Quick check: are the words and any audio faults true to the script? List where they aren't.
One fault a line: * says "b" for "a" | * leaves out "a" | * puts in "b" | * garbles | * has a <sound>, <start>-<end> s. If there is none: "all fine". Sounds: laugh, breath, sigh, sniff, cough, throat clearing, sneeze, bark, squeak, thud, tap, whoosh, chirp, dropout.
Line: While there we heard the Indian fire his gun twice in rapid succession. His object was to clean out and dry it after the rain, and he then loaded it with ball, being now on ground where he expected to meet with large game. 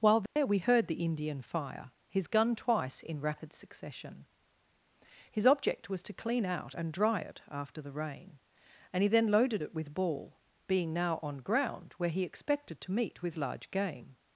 * has a dropout, 0.3-0.4 s